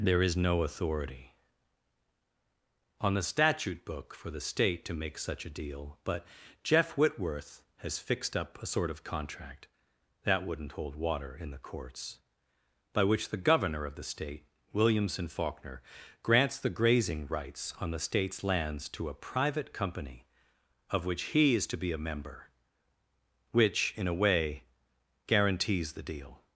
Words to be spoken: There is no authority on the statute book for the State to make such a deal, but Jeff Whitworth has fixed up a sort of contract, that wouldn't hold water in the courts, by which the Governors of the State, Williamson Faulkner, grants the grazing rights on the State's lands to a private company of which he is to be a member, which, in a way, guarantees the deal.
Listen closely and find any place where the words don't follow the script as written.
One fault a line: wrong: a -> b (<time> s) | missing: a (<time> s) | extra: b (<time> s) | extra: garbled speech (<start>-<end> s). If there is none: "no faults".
wrong: Governors -> Governor (13.4 s)